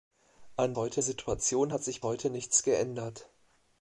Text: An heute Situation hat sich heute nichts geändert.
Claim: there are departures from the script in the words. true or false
false